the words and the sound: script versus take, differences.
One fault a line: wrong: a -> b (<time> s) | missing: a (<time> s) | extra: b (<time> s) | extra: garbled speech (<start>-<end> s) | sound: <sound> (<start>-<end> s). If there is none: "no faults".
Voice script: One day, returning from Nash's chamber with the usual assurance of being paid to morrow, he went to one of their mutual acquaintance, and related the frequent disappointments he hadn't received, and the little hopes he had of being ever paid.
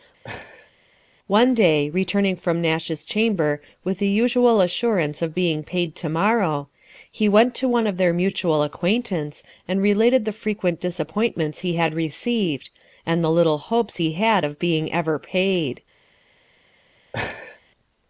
sound: laugh (0.2-0.7 s)
wrong: hadn't -> had (11.7 s)
sound: laugh (17.1-17.6 s)